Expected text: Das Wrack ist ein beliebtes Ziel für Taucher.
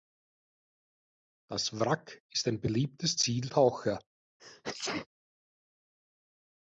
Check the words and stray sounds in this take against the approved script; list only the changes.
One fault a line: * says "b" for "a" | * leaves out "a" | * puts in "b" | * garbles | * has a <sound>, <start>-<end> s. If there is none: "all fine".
* leaves out "für"
* has a sneeze, 4.4-5.1 s